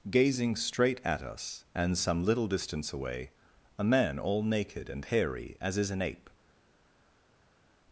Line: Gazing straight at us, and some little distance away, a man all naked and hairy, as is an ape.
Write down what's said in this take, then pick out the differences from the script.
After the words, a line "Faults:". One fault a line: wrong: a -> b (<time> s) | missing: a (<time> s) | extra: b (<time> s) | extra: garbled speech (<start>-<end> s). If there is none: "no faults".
Gazing straight at us, and some little distance away, a man all naked and hairy, as is an ape.
Faults:
no faults